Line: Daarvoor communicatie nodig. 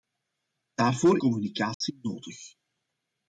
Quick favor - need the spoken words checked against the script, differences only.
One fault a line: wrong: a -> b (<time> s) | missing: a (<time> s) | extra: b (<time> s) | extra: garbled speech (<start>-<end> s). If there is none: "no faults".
no faults